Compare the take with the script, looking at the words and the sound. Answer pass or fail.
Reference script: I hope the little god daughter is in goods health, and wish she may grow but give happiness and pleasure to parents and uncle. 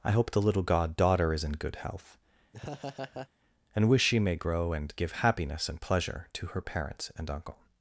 fail